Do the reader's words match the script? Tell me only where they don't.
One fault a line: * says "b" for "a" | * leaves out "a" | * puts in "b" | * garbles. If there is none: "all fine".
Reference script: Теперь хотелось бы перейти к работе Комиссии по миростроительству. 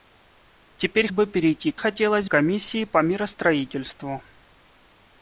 * leaves out "хотелось"
* says "хотелось" for "работе"